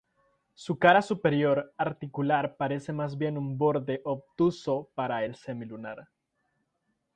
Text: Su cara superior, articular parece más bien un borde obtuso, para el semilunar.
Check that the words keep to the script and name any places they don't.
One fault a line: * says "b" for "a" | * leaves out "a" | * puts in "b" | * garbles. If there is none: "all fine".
all fine